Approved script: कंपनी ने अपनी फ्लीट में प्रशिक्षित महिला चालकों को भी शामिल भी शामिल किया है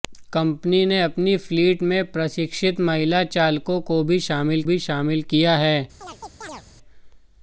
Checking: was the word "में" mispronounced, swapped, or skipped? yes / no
no